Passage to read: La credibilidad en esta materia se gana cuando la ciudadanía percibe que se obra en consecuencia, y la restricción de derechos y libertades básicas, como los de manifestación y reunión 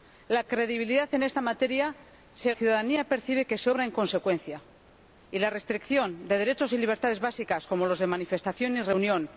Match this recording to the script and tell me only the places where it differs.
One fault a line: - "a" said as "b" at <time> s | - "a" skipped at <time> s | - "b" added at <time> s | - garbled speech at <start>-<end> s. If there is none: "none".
- "gana cuando la" skipped at 2.5 s